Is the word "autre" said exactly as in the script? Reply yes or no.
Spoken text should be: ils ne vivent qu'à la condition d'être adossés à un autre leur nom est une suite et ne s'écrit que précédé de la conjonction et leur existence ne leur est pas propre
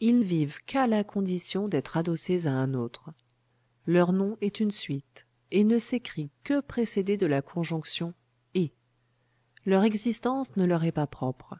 yes